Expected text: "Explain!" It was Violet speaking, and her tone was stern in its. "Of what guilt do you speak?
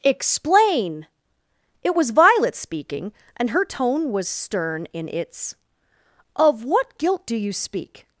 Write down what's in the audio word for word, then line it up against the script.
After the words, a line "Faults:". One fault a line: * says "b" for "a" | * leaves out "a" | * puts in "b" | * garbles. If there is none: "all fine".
"Explain!" It was Violet speaking, and her tone was stern in its. "Of what guilt do you speak?
Faults:
all fine